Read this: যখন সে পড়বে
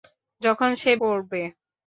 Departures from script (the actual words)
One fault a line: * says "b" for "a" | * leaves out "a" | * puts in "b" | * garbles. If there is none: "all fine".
all fine